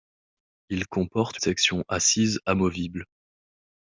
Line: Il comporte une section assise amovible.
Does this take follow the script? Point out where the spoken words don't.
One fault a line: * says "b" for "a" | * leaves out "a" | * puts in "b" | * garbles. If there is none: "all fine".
* leaves out "une"